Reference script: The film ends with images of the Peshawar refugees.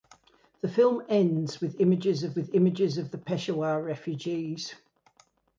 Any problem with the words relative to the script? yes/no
yes